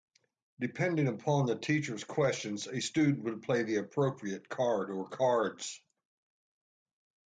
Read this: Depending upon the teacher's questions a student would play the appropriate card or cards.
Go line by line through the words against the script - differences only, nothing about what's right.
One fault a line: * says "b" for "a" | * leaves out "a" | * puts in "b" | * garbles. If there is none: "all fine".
all fine